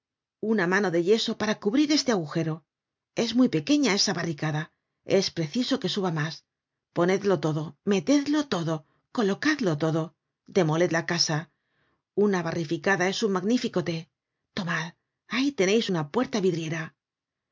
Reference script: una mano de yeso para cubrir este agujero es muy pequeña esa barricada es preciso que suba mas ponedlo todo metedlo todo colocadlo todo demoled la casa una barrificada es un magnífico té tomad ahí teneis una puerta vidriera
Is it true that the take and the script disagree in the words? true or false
false